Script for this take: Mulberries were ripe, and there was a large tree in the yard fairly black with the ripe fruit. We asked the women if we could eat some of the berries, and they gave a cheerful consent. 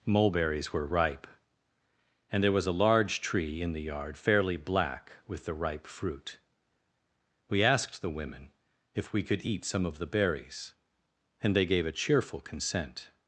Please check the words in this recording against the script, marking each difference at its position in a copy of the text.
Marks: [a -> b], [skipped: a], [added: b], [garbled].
Mulberries were ripe, and there was a large tree in the yard fairly black with the ripe fruit. We asked the women if we could eat some of the berries, and they gave a cheerful consent.